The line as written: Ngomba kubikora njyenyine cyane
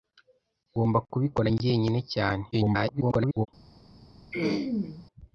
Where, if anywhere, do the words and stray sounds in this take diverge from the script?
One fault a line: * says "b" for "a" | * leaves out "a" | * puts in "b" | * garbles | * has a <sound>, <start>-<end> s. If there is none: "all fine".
* garbles
* has a throat clearing, 4.3-5.1 s